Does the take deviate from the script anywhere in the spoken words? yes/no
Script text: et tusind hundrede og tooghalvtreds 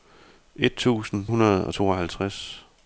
no